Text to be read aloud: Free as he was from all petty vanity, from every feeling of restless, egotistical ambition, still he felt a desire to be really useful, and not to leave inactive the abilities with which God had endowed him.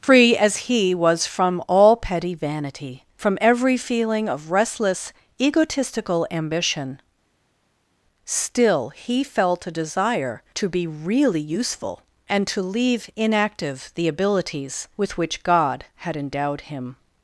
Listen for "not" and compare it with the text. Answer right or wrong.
wrong